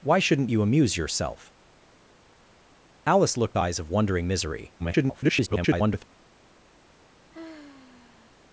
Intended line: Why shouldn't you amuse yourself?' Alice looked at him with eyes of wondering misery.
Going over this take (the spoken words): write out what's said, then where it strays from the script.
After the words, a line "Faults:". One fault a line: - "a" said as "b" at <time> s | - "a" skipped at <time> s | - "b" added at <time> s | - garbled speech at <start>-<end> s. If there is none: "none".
Why shouldn't you amuse yourself?' Alice looked eyes of wondering misery. [garbled]
Faults:
- "at him with" skipped at 3.6 s
- garbled speech at 4.8-6.0 s